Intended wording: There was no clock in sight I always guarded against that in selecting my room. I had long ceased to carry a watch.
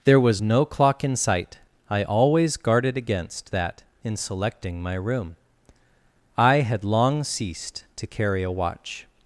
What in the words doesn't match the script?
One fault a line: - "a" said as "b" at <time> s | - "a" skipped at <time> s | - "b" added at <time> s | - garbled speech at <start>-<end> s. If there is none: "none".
none